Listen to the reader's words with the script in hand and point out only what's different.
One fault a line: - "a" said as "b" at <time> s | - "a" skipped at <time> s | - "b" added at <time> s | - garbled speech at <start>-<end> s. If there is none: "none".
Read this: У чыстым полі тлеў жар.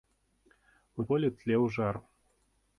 - "чыстым" skipped at 1.1 s